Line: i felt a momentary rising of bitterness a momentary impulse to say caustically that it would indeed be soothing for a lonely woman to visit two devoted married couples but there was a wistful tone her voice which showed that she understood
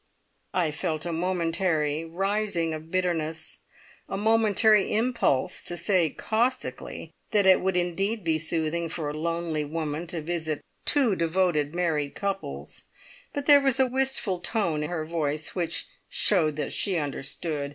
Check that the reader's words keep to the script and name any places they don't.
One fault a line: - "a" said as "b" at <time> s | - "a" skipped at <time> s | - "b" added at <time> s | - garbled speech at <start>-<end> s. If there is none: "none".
none